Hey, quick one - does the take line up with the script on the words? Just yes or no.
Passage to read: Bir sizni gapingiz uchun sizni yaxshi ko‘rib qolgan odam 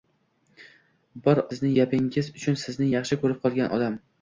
yes